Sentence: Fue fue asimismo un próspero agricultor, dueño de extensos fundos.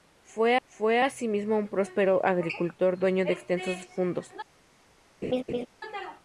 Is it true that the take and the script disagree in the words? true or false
false